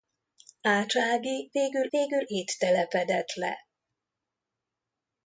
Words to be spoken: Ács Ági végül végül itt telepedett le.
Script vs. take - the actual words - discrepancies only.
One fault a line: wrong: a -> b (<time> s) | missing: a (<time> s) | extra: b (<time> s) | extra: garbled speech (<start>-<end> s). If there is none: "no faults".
no faults